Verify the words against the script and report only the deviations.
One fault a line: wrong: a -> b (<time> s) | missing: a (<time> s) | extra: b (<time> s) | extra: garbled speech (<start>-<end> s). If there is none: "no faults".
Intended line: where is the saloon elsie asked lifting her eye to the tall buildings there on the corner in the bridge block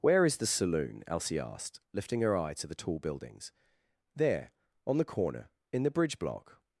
no faults